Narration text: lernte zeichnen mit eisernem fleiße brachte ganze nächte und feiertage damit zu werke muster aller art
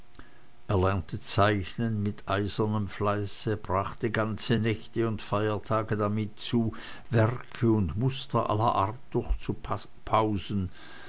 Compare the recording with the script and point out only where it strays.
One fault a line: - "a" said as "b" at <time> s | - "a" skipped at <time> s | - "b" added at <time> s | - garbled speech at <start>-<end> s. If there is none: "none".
- "und" added at 7.7 s